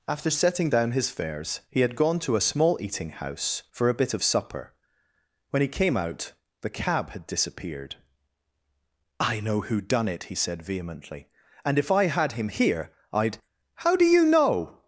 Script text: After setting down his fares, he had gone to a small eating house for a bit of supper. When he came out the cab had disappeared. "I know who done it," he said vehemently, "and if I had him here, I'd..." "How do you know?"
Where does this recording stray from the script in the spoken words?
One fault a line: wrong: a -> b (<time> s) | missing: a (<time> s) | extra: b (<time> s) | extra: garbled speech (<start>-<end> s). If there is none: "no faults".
no faults